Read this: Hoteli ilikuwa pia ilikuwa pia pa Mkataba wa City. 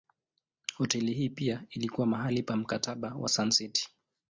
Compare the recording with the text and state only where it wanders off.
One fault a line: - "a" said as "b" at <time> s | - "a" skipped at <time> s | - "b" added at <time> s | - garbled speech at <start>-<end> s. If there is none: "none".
- "ilikuwa" said as "hii" at 1.1 s
- "pia" said as "mahali" at 2.1 s
- "Sun" added at 3.3 s